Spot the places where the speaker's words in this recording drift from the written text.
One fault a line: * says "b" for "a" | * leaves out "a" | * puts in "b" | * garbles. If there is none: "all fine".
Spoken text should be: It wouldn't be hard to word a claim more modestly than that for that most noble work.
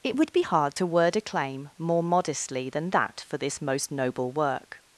* says "would" for "wouldn't"
* says "this" for "that"